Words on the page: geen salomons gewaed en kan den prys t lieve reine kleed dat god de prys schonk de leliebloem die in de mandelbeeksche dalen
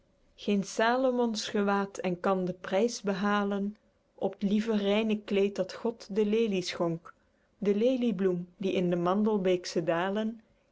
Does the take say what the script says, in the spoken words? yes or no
no